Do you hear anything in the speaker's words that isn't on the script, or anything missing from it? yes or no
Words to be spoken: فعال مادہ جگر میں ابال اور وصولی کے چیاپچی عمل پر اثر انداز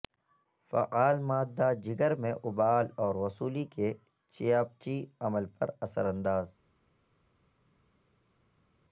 no